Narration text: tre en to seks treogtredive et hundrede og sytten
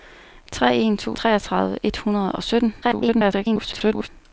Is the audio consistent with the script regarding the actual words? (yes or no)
no